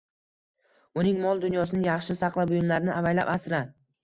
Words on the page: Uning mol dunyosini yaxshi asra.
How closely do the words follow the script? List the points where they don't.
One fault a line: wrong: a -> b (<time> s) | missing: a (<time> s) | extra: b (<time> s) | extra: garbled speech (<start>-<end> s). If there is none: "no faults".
extra: saqla buyumlarini avaylab (2.2 s)